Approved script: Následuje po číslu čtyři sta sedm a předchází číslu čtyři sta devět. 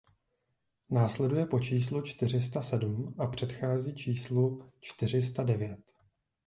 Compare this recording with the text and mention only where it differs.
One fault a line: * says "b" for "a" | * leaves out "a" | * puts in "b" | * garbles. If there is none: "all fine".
all fine